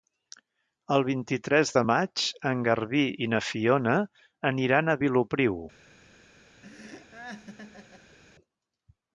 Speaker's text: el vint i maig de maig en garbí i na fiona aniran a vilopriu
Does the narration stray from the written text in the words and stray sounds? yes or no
yes